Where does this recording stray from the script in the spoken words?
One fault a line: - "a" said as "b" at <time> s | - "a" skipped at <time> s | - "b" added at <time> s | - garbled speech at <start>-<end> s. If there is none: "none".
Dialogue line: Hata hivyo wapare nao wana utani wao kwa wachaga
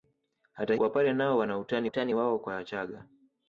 - "hivyo" skipped at 0.8 s
- "utani" added at 1.8 s